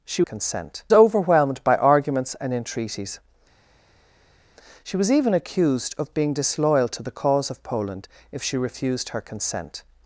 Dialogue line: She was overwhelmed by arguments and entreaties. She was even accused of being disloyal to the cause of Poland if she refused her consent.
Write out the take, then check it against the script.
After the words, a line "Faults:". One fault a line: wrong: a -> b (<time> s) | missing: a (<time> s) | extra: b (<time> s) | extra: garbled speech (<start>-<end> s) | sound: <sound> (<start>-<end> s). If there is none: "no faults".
She consent overwhelmed by arguments and entreaties. She was even accused of being disloyal to the cause of Poland if she refused her consent.
Faults:
wrong: was -> consent (0.2 s)